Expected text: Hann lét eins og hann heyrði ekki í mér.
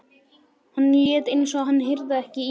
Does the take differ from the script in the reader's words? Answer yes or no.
no